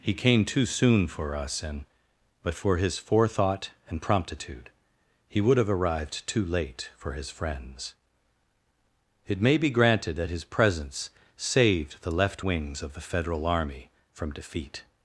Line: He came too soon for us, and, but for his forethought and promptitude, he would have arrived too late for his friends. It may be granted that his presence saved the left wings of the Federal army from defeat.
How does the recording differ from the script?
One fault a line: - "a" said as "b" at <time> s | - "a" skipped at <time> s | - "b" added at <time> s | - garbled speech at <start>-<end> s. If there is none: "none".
none